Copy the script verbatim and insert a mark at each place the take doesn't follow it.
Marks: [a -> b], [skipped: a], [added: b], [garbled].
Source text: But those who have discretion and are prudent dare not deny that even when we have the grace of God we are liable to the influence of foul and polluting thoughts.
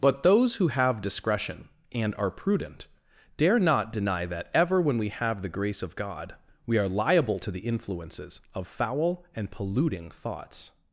But those who have discretion and are prudent dare not deny that [even -> ever] when we have the grace of God we are liable to the [influence -> influences] of foul and polluting thoughts.